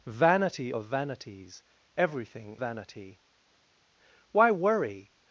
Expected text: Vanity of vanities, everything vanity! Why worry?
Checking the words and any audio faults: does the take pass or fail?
pass